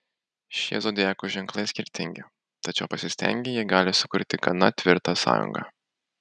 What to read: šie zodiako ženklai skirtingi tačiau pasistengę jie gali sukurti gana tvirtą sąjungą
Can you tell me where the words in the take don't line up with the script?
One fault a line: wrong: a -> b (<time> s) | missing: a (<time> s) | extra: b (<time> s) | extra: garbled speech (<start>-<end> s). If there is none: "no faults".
no faults